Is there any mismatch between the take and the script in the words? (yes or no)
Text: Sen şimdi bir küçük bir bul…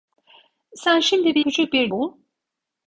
no